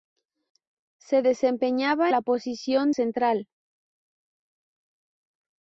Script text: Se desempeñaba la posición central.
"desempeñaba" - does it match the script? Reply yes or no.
yes